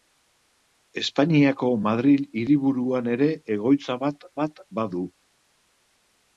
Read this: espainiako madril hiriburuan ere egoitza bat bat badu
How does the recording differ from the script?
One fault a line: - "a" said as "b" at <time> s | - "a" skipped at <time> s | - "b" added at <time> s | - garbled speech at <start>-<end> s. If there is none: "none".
none